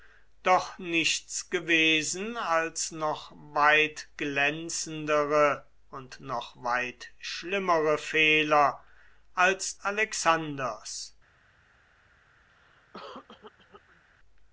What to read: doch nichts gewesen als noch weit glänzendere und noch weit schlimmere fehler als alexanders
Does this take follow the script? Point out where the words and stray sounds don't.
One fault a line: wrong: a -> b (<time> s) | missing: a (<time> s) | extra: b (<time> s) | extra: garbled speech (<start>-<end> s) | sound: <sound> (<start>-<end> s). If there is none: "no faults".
sound: cough (12.5-14.0 s)